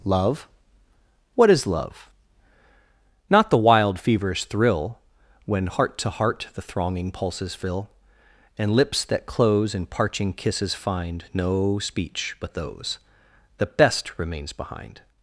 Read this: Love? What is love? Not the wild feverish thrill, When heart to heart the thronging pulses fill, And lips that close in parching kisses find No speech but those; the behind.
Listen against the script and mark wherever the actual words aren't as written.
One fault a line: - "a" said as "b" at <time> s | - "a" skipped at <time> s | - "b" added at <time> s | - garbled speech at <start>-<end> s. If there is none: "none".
- "best remains" added at 13.6 s